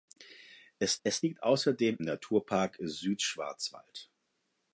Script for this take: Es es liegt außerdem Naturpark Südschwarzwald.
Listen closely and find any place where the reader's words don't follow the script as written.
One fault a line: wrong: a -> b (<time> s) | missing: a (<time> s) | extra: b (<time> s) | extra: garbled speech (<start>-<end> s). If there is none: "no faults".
no faults